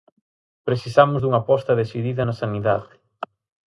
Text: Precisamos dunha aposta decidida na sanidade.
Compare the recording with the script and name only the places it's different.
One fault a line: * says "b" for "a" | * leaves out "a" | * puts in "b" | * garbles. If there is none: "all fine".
all fine